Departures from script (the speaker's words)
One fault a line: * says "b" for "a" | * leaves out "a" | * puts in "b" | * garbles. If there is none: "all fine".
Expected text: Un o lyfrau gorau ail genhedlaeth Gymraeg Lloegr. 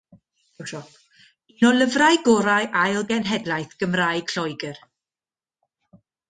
all fine